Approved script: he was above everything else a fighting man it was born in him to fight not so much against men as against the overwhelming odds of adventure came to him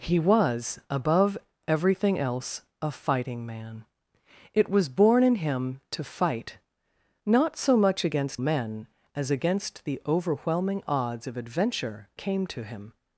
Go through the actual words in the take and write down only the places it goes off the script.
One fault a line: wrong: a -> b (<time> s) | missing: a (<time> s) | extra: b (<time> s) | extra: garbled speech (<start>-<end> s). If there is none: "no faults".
no faults